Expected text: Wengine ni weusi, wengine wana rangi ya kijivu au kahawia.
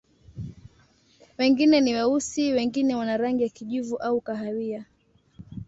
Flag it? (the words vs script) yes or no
no